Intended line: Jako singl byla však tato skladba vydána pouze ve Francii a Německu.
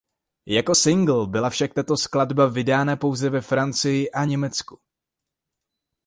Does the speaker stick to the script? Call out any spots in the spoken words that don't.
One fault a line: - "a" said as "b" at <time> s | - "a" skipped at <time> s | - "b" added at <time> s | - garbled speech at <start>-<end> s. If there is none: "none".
none